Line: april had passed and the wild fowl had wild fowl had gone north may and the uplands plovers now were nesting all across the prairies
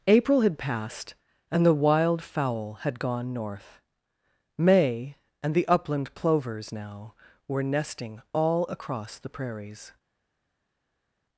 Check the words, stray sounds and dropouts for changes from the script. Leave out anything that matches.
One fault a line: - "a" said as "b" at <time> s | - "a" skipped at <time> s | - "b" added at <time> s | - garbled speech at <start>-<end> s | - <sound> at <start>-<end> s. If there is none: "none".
- "wild fowl had" skipped at 3.0 s
- "uplands" said as "upland" at 5.7 s